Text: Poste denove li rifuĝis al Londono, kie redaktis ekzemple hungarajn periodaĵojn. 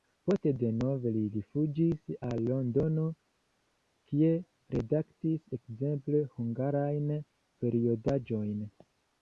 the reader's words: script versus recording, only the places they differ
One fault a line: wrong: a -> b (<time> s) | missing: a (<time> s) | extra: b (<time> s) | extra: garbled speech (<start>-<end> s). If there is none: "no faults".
no faults